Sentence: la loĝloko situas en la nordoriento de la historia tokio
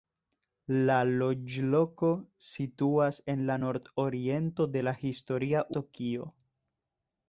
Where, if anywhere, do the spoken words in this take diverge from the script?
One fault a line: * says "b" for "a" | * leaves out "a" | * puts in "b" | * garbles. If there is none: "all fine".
all fine